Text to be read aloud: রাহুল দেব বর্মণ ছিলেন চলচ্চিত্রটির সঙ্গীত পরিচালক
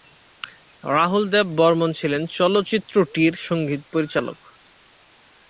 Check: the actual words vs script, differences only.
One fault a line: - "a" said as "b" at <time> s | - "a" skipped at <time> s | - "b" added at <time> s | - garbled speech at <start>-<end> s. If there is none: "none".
none